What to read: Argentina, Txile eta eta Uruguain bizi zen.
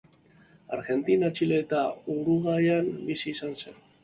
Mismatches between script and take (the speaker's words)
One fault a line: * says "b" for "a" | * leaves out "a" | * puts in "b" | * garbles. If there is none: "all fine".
* leaves out "eta"
* puts in "izan"